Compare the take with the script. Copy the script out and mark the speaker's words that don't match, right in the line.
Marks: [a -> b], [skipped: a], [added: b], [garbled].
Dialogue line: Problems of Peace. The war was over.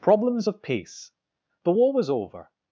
Problems of Peace. The war was over.